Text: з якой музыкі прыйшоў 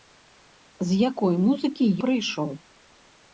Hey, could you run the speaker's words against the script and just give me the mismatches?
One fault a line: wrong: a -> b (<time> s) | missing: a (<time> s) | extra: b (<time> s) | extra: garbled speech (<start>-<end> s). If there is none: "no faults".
no faults